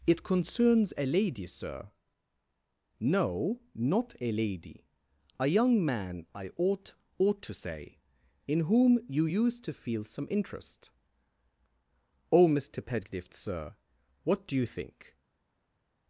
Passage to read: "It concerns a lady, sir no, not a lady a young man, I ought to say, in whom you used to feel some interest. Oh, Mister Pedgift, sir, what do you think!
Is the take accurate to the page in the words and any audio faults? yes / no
no